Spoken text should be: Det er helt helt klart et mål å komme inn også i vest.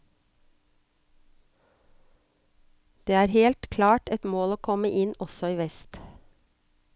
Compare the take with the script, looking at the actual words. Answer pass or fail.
fail